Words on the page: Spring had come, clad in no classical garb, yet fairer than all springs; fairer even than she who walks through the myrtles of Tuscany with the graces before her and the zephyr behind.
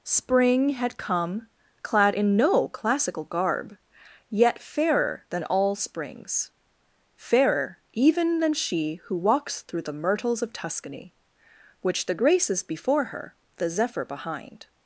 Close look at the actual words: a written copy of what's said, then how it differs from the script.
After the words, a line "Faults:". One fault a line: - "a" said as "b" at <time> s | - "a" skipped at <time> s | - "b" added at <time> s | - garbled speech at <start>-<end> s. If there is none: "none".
Spring had come, clad in no classical garb, yet fairer than all springs; fairer even than she who walks through the myrtles of Tuscany which the graces before her the zephyr behind.
Faults:
- "with" said as "which" at 11.8 s
- "and" skipped at 13.4 s